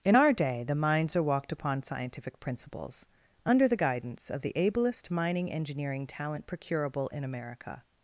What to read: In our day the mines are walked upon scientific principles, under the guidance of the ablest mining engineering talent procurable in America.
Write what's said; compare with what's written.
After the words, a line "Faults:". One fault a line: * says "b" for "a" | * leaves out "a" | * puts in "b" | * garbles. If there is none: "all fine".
In our day the mines are walked upon scientific principles, under the guidance of the ablest mining engineering talent procurable in America.
Faults:
all fine